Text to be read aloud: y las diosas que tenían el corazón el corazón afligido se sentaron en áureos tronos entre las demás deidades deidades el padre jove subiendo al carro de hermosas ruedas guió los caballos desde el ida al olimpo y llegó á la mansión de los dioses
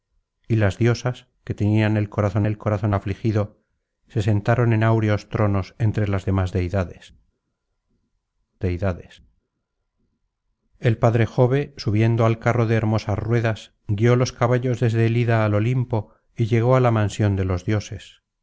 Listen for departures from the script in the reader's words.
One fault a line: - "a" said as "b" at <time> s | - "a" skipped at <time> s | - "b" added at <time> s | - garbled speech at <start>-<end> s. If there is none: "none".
none